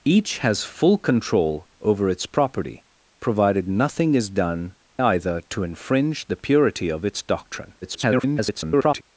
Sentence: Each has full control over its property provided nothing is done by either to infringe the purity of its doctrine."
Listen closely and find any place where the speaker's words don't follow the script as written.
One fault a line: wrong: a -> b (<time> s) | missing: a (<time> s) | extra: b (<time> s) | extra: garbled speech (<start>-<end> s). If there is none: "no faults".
missing: by (4.8 s)
extra: garbled speech (7.8-9.0 s)